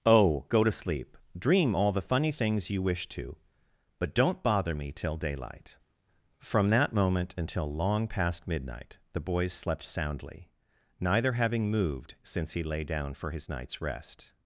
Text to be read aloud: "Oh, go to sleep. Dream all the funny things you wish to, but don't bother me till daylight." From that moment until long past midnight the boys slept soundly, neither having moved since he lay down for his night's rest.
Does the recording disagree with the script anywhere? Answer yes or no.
no